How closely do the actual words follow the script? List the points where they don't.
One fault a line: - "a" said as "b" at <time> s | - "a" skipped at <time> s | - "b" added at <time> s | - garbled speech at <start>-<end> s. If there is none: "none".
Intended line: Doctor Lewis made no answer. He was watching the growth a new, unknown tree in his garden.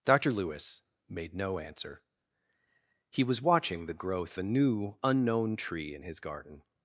none